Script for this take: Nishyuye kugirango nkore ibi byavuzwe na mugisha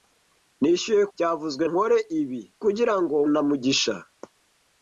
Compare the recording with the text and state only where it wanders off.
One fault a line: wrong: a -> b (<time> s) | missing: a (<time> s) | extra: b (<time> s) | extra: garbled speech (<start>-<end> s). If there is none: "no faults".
wrong: kugirango -> byavuzwe (1.1 s)
wrong: byavuzwe -> kugirango (2.6 s)